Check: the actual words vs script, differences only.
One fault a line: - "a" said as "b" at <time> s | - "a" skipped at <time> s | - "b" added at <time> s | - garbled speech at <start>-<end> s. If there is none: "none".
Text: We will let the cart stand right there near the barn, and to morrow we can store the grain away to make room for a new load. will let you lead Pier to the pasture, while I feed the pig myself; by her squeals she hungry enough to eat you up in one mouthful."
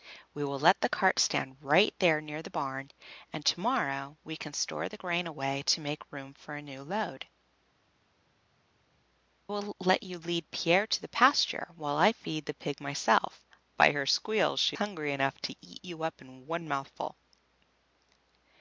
none